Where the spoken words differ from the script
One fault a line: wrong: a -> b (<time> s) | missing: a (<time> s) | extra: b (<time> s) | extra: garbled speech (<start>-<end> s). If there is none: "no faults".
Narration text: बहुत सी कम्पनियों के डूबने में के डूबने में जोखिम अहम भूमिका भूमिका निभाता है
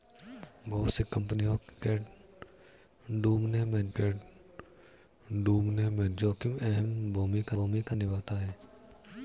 no faults